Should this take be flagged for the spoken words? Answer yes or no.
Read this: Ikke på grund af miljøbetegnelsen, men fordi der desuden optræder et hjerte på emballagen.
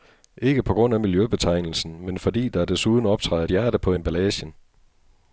no